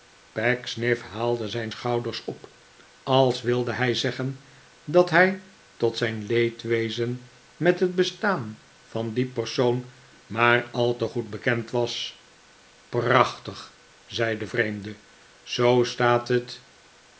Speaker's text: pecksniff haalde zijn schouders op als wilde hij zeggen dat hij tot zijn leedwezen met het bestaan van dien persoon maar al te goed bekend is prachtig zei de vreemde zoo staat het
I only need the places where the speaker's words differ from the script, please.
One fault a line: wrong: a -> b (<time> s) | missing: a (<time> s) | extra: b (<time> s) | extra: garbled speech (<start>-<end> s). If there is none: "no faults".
wrong: is -> was (11.7 s)